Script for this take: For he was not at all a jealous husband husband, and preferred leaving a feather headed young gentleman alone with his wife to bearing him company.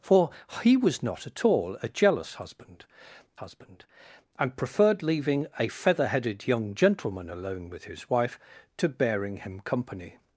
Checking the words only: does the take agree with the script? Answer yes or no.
yes